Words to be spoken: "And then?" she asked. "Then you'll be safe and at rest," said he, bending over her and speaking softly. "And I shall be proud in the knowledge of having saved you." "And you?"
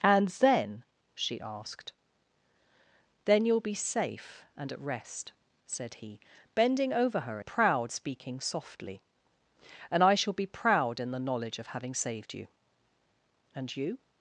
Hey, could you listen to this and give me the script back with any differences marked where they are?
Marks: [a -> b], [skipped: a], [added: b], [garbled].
"And then?" she asked. "Then you'll be safe and at rest," said he, bending over her [and -> proud] speaking softly. "And I shall be proud in the knowledge of having saved you." "And you?"